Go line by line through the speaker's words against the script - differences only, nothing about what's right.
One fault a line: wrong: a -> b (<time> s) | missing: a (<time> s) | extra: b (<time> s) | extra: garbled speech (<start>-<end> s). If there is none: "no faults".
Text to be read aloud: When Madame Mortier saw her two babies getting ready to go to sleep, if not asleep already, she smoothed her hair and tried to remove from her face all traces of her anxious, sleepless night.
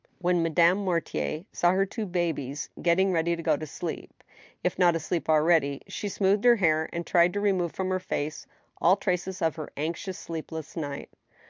no faults